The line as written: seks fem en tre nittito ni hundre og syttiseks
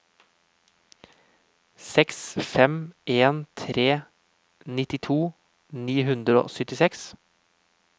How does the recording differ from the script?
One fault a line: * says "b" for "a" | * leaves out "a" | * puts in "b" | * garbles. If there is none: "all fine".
all fine